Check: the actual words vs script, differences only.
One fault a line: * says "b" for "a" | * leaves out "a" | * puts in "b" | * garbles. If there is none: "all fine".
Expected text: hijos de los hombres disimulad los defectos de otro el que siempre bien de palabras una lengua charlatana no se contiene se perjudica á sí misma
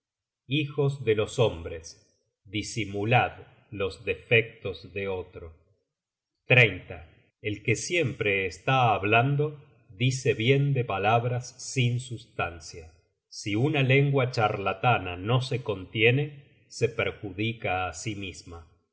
* puts in "está hablando dice"
* puts in "sin sustancia si"